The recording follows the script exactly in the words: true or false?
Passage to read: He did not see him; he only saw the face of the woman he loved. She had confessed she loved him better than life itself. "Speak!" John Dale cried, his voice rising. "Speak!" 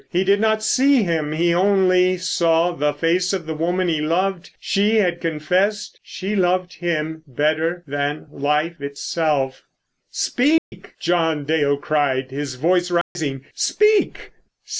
true